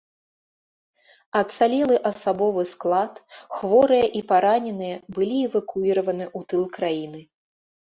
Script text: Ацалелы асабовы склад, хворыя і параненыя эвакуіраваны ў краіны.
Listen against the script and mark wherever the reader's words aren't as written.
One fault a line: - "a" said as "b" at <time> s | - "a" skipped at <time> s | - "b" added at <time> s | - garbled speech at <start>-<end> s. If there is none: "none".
- "былі" added at 5.2 s
- "тыл" added at 6.5 s